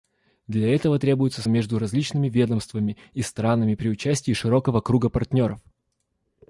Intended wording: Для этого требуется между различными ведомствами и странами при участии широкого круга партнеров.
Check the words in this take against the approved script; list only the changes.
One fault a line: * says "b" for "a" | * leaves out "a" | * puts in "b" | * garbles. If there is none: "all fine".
all fine